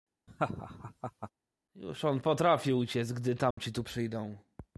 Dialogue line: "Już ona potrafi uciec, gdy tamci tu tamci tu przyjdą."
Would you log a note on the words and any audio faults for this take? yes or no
yes